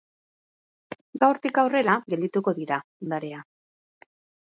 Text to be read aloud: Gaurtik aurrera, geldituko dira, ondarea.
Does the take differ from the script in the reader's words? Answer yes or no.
no